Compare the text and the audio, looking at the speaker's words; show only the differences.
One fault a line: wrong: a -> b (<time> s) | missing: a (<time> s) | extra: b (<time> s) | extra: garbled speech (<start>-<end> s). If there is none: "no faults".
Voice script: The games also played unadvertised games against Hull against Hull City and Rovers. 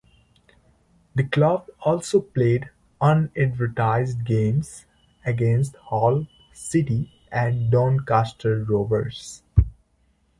wrong: games -> club (1.2 s)
missing: against Hull (6.2 s)
extra: Doncaster (7.7 s)